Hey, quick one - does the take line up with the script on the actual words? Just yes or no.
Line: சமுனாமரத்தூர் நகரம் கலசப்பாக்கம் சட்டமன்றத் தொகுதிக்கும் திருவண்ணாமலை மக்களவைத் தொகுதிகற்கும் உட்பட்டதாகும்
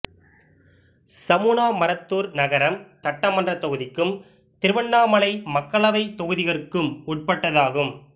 no